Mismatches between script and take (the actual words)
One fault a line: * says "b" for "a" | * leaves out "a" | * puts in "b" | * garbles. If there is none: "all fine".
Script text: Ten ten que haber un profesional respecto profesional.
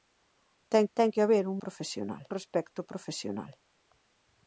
all fine